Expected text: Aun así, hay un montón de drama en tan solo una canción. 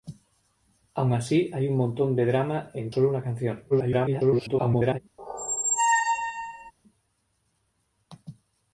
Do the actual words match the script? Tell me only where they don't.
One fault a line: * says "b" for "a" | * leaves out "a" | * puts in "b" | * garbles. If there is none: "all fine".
* leaves out "tan"
* garbles